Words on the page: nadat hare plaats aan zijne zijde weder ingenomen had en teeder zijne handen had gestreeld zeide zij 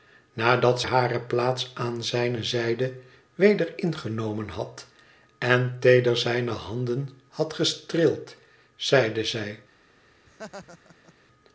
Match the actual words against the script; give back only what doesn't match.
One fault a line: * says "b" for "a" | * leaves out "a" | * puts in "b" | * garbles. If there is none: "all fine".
all fine